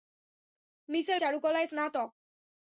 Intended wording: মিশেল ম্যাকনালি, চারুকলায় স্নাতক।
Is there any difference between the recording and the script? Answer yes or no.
yes